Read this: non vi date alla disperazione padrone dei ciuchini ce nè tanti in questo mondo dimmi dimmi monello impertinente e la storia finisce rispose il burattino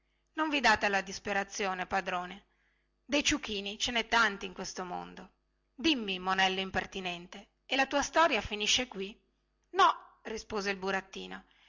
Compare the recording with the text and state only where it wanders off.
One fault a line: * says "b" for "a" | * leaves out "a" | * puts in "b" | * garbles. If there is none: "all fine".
* leaves out "dimmi"
* puts in "tua"
* puts in "qui no"